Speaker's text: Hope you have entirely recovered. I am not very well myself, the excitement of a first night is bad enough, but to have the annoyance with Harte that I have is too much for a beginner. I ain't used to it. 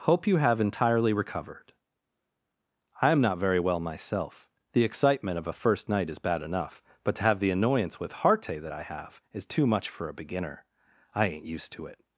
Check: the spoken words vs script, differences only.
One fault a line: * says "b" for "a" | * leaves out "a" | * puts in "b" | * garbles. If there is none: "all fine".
all fine